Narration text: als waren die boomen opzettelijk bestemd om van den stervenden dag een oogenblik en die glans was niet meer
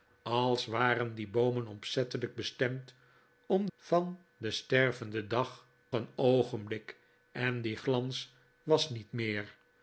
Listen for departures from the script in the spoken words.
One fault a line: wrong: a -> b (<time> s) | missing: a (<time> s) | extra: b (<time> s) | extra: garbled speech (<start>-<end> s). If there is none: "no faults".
no faults